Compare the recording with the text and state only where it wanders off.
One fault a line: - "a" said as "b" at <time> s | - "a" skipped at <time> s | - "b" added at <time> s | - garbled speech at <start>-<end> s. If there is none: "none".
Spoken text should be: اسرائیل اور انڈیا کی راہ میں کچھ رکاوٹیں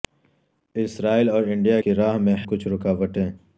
none